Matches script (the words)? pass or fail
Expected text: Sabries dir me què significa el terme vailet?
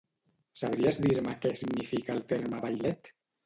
pass